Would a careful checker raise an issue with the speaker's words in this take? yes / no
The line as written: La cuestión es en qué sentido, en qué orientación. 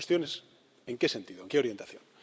no